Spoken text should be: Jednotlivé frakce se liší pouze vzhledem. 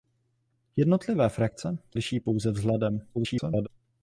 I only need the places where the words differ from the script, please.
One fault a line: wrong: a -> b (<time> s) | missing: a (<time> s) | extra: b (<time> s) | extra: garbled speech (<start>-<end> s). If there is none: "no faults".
missing: se (1.8 s)
extra: garbled speech (3.1-3.7 s)